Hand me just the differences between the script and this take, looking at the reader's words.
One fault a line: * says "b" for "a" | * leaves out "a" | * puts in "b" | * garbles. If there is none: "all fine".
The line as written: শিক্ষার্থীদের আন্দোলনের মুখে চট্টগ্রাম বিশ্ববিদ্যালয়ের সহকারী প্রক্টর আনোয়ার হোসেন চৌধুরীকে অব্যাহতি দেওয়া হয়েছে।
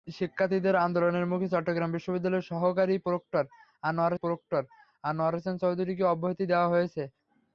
* puts in "প্রক্টর আনোয়ার"